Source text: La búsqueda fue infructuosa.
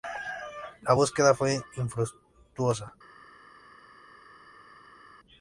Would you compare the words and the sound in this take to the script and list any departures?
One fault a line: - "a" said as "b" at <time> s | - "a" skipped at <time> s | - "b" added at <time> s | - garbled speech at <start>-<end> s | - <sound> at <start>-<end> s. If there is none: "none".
none